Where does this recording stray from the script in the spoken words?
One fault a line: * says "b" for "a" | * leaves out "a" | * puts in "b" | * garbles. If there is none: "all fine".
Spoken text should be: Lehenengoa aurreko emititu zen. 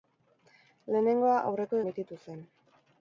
all fine